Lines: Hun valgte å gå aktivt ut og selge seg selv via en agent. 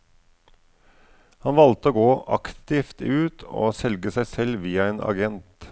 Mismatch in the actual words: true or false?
true